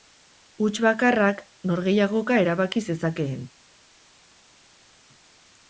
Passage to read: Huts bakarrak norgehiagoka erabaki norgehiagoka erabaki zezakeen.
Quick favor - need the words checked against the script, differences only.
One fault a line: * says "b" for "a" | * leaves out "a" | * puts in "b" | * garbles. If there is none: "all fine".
* leaves out "norgehiagoka erabaki"